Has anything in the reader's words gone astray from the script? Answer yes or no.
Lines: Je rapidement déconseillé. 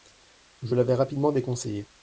yes